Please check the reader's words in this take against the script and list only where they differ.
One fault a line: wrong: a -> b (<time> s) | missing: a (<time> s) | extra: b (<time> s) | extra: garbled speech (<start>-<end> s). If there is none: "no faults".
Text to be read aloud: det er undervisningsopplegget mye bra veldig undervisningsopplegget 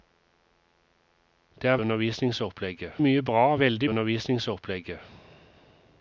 no faults